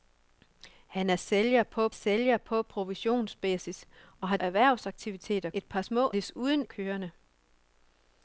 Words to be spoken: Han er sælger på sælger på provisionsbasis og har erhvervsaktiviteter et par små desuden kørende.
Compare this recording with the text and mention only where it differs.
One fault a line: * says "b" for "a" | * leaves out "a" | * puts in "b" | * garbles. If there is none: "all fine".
all fine